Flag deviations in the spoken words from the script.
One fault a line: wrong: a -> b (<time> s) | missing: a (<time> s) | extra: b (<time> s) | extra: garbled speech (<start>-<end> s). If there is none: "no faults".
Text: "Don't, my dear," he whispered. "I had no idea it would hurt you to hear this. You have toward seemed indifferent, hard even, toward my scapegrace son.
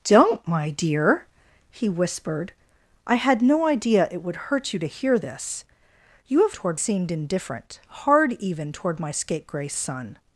no faults